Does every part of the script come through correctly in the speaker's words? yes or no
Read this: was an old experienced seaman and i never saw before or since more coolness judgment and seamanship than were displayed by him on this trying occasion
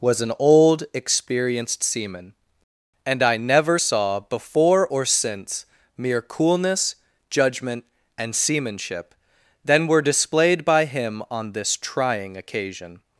no